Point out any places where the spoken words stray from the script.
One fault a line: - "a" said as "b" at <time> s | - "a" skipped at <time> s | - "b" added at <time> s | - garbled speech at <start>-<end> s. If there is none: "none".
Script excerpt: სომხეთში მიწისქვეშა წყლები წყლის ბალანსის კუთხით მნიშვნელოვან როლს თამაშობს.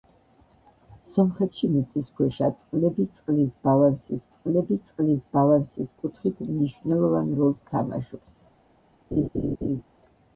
- "წყლები წყლის ბალანსის" added at 4.3 s